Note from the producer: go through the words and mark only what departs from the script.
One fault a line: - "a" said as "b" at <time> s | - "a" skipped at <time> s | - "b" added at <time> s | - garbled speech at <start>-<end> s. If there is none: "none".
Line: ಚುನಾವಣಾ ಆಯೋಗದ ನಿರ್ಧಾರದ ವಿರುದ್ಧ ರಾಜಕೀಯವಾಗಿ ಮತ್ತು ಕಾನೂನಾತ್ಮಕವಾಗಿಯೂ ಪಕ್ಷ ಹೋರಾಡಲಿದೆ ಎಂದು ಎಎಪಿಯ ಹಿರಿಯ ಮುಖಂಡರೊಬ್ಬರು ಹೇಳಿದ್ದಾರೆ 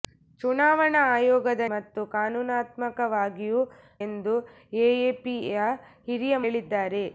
- "ನಿರ್ಧಾರದ ವಿರುದ್ಧ ರಾಜಕೀಯವಾಗಿ" skipped at 1.6 s
- "ಪಕ್ಷ ಹೋರಾಡಲಿದೆ" skipped at 3.6 s
- "ಮುಖಂಡರೊಬ್ಬರು" skipped at 6.4 s